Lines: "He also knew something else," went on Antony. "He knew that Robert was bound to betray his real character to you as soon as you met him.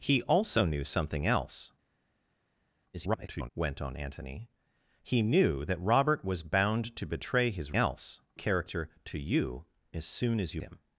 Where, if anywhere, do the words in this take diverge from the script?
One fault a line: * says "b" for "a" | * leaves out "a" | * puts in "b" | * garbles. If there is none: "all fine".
* garbles
* says "else" for "real"
* leaves out "met"